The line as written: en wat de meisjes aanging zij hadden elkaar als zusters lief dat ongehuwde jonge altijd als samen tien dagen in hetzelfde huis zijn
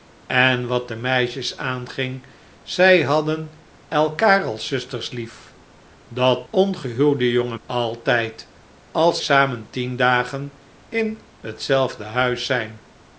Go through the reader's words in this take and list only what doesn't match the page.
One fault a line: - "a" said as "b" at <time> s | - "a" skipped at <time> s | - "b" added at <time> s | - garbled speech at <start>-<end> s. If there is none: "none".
none